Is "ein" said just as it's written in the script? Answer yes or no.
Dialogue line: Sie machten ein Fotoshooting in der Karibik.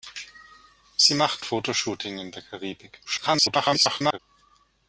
no